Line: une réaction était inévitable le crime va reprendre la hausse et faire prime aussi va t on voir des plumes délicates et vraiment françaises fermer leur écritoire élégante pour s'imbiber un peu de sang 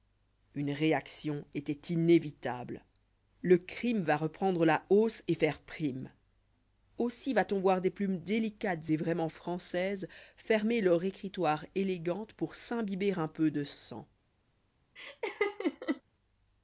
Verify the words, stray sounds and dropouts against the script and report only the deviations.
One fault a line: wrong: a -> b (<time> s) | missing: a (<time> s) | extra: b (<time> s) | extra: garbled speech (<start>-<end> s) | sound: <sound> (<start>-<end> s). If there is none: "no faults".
sound: laugh (15.0-16.0 s)